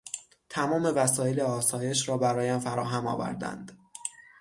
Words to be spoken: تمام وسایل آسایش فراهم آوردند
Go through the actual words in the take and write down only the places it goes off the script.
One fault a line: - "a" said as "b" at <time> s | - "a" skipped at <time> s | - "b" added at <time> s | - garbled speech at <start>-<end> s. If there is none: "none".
- "را برایم" added at 2.1 s